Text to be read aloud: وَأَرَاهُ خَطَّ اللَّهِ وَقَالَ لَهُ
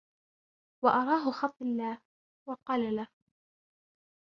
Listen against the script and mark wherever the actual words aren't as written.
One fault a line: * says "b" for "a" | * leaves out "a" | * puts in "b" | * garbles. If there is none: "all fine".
all fine